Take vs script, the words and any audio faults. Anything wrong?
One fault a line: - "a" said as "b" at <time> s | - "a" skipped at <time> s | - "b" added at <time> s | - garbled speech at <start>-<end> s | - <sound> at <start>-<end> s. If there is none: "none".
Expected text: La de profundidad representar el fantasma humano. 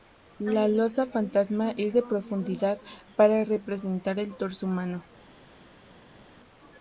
- "losa fantasma es" added at 0.7 s
- "para" added at 3.2 s
- "fantasma" said as "torso" at 4.4 s